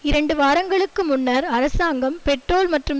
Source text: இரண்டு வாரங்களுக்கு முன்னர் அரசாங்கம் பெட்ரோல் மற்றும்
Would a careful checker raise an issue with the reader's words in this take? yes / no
no